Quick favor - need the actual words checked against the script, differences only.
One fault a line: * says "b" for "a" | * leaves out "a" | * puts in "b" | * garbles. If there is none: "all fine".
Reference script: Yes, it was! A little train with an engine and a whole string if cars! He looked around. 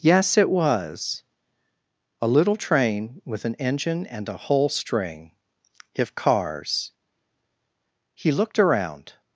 all fine